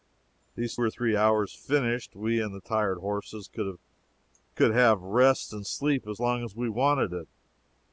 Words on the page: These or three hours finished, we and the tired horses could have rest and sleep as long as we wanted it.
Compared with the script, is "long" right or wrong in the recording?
right